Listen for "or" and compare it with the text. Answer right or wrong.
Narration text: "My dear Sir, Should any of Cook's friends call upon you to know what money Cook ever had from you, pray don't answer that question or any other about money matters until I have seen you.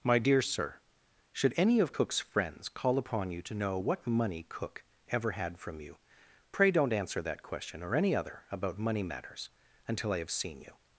right